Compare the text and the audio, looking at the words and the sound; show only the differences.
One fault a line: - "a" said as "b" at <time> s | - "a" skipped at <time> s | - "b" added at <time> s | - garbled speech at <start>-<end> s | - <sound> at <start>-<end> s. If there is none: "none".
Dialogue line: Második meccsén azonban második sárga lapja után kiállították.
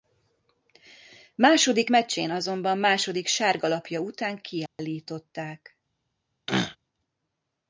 - dropout at 4.7-4.8 s
- throat clearing at 6.5-6.8 s